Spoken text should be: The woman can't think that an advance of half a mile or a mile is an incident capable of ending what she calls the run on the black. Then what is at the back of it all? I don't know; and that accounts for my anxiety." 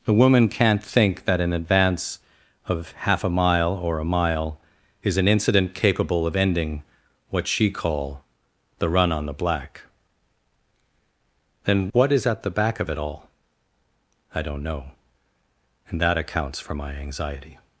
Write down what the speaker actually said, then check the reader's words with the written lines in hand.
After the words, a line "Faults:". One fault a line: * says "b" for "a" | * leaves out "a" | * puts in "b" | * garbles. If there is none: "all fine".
The woman can't think that an advance of half a mile or a mile is an incident capable of ending what she call the run on the black. Then what is at the back of it all? I don't know; and that accounts for my anxiety."
Faults:
* says "call" for "calls"